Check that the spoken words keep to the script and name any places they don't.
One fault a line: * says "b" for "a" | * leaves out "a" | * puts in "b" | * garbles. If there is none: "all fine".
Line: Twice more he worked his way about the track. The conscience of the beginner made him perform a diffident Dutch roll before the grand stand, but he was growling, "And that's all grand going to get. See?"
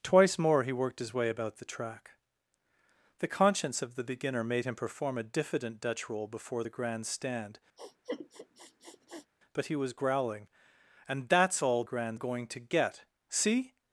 all fine